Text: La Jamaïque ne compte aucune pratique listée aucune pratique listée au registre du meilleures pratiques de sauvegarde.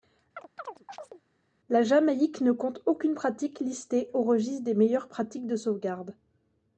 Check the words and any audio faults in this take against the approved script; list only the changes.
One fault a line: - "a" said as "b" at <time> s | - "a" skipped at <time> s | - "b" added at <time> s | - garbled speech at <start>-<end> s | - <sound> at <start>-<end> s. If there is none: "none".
- chirp at 0.4-1.2 s
- "aucune pratique listée" skipped at 4.1 s
- "du" said as "des" at 4.6 s